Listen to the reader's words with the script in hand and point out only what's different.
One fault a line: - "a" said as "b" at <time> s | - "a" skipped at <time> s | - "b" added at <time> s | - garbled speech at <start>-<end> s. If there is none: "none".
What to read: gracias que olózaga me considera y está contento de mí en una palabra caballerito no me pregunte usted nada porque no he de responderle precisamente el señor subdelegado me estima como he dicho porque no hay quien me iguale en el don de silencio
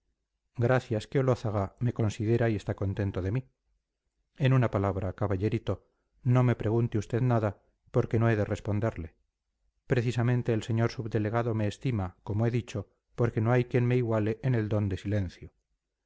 none